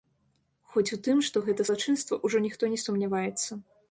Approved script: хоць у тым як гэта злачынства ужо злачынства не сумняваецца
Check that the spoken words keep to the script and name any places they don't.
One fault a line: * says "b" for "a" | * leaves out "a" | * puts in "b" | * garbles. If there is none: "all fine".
* says "што" for "як"
* says "ніхто" for "злачынства"